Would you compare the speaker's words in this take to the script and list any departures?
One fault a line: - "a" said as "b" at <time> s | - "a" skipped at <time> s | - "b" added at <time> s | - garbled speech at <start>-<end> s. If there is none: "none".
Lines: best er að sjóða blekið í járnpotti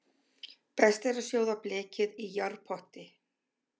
none